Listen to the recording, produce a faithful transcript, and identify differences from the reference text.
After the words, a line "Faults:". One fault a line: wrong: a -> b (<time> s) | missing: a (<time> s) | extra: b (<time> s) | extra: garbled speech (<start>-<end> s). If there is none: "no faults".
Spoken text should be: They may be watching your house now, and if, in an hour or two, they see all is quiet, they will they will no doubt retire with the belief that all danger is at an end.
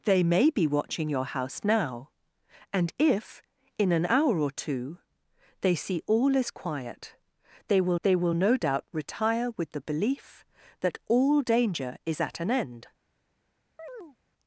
They may be watching your house now, and if, in an hour or two, they see all is quiet, they will they will no doubt retire with the belief that all danger is at an end.
Faults:
no faults